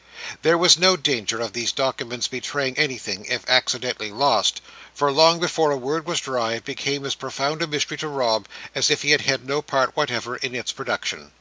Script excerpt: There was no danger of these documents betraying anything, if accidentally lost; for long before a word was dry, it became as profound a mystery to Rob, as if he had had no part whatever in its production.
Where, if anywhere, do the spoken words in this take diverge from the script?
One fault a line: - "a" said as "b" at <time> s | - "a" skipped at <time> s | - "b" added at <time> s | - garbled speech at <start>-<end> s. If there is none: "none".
none